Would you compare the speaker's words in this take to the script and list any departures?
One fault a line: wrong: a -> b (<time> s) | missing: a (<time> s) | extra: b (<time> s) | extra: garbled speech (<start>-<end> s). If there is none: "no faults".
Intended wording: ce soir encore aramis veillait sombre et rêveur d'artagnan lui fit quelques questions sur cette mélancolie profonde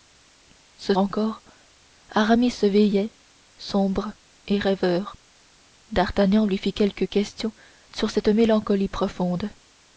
missing: soir (0.9 s)